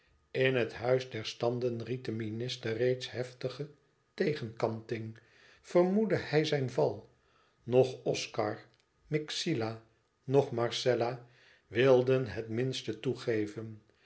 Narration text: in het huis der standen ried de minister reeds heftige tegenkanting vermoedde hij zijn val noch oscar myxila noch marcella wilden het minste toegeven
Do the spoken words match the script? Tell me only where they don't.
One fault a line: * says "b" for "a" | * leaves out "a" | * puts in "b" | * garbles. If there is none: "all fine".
all fine